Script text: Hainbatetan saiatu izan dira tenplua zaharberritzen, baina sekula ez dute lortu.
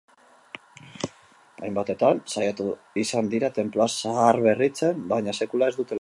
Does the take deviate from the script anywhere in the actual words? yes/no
no